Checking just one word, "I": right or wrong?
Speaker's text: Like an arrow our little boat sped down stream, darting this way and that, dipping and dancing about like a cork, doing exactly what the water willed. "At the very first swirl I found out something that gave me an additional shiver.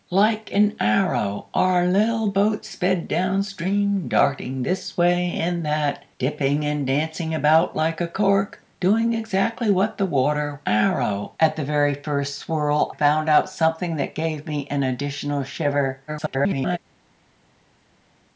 wrong